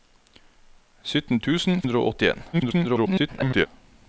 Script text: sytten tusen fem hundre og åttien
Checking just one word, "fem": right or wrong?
wrong